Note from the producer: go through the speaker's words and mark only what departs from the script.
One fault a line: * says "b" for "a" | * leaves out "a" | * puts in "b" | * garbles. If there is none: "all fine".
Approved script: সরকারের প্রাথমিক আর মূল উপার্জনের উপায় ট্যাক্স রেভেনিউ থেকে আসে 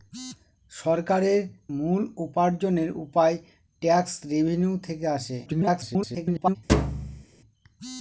* leaves out "প্রাথমিক আর"
* garbles